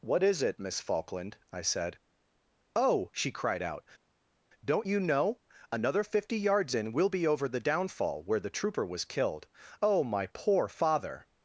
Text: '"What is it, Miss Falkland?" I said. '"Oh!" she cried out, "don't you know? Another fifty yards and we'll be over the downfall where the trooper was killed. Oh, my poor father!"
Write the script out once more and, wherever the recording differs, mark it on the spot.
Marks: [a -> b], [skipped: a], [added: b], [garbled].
'"What is it, Miss Falkland?" I said. '"Oh!" she cried out, "don't you know? Another fifty yards [and -> in] we'll be over the downfall where the trooper was killed. Oh, my poor father!"